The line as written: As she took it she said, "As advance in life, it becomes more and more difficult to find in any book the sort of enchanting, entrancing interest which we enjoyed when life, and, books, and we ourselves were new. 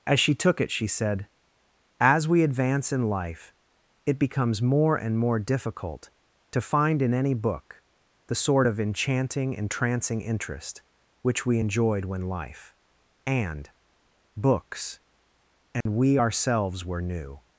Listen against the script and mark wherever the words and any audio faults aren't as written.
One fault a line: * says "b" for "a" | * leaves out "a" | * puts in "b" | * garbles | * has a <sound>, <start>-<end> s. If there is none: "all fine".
* puts in "we"
* has a dropout, 15.8-15.9 s